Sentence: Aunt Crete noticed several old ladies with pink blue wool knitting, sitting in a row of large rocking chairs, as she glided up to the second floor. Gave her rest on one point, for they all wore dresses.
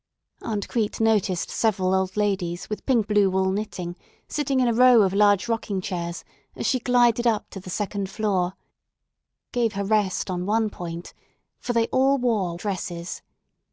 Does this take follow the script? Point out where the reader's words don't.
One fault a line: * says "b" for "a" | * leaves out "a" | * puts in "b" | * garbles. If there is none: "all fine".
all fine